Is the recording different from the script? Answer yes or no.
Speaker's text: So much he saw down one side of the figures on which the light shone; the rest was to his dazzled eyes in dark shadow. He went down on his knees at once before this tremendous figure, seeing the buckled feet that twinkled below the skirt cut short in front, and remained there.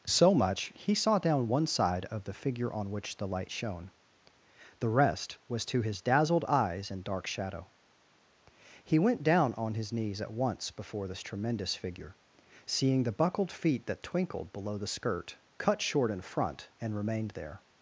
yes